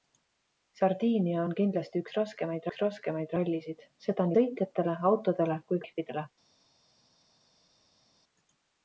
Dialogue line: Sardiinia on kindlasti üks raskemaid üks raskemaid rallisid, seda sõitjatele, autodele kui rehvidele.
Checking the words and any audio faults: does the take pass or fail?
pass